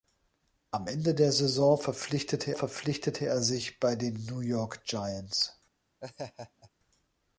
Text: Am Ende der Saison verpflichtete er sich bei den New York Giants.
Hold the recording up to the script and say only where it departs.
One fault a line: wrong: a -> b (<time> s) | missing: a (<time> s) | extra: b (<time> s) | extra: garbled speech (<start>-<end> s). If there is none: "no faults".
extra: verpflichtete (2.5 s)